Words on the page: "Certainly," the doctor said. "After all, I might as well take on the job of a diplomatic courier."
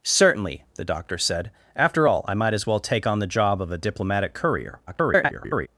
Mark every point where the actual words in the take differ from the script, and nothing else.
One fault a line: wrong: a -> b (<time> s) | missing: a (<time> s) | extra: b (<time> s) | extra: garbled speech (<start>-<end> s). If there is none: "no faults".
extra: garbled speech (4.9-5.7 s)